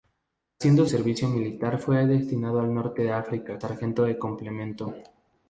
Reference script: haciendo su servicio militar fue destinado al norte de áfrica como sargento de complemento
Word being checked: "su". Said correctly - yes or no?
no